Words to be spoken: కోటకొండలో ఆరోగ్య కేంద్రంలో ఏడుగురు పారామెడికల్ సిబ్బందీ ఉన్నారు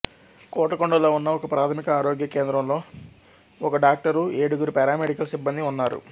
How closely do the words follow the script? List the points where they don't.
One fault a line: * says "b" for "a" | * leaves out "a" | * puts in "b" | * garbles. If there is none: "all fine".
* puts in "ఉన్న ఒకప్రాథమిక"
* puts in "ఒక డాక్టరు"